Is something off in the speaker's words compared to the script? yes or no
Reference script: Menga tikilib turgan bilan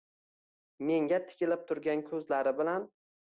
yes